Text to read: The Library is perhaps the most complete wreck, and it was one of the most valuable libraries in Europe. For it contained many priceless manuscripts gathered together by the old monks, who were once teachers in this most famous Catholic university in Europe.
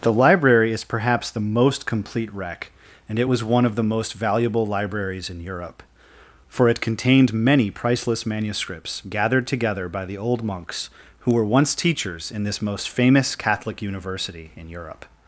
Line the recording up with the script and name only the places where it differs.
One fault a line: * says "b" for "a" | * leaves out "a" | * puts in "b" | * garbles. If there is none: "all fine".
all fine